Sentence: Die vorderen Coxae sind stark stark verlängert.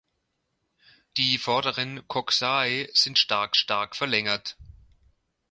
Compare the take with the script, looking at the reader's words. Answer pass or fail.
pass